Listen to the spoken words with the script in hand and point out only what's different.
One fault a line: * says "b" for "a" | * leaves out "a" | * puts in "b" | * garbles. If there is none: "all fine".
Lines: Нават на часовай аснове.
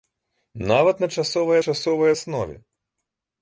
* puts in "часовай"